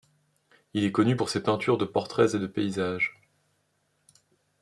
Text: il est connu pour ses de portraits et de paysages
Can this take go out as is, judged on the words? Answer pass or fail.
fail